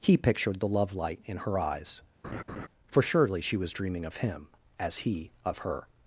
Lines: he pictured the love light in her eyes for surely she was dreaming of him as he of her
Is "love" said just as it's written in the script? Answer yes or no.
yes